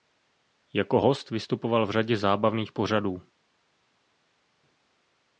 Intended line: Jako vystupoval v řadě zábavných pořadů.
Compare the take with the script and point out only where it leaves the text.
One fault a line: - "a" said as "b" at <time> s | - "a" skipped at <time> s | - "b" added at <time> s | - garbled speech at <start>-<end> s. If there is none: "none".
- "host" added at 1.0 s